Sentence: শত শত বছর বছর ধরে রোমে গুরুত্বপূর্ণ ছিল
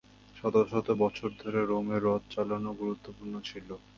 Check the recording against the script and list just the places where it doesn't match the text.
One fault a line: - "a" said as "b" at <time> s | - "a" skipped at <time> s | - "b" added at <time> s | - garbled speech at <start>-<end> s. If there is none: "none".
- "বছর" skipped at 1.3 s
- "রথ চালানো" added at 2.0 s